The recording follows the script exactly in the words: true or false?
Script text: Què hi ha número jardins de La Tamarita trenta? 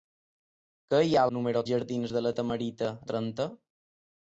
true